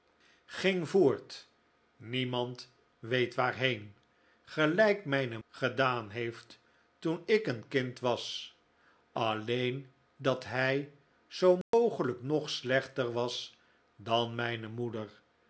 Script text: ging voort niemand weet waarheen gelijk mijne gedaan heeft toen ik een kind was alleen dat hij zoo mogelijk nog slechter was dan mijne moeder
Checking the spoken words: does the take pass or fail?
pass